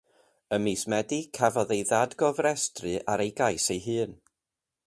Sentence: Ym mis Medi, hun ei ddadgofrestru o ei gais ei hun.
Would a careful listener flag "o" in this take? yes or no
yes